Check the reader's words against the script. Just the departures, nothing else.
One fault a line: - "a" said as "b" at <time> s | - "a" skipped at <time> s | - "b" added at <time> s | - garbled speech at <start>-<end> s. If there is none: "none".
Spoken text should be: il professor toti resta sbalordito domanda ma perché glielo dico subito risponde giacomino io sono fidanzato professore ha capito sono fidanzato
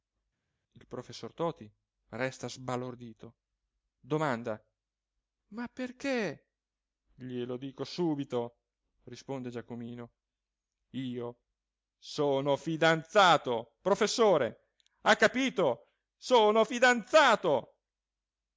none